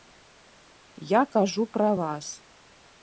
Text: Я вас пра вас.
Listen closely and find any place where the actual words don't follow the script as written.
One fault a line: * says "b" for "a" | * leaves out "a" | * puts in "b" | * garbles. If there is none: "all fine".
* says "кажу" for "вас"